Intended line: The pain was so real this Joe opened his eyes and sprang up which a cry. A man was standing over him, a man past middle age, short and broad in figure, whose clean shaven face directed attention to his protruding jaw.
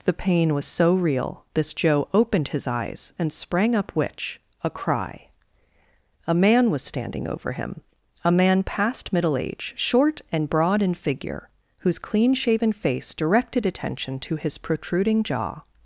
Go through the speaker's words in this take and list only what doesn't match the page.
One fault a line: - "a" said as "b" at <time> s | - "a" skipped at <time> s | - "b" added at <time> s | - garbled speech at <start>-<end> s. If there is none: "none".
none